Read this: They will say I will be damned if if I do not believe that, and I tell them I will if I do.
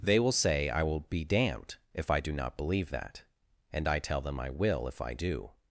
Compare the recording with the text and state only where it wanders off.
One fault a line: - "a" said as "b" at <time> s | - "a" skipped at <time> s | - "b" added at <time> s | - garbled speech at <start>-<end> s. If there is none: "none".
- "if" skipped at 2.1 s